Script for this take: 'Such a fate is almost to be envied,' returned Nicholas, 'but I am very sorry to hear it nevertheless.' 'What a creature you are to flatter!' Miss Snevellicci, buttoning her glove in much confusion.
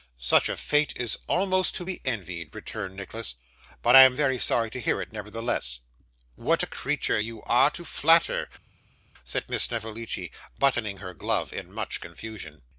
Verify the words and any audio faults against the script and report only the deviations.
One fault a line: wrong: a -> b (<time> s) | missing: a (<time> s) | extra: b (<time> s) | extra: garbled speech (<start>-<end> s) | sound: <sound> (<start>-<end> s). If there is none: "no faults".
extra: said (9.2 s)